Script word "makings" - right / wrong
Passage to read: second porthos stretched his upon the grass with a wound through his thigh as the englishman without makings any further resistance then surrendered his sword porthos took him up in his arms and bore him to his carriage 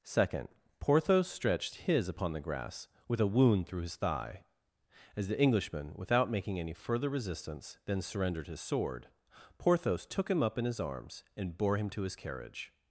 wrong